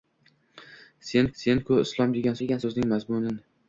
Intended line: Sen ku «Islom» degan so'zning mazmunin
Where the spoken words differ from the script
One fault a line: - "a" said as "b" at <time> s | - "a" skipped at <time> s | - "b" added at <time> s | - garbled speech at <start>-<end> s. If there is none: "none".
- "sen" added at 1.4 s
- "degan" added at 2.4 s